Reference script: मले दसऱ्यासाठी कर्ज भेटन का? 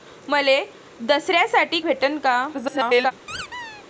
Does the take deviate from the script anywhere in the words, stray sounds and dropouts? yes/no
yes